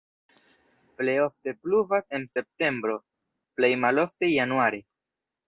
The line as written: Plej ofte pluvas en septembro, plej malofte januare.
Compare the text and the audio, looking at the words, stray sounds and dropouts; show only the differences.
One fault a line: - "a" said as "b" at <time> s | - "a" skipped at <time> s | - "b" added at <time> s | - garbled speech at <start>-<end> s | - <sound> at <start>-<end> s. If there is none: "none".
none